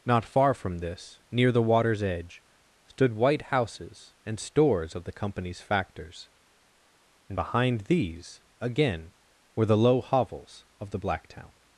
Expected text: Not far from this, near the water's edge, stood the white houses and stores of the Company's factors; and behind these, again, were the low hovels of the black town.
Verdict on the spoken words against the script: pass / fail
fail